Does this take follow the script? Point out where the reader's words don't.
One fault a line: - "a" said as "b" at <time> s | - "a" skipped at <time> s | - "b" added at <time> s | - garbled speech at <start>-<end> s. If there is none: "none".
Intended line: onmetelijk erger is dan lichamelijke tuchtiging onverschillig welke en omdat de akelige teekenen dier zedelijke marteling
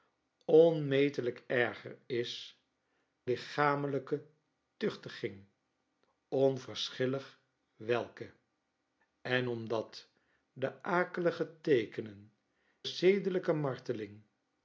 - "dan" skipped at 2.6 s
- "dier" skipped at 12.3 s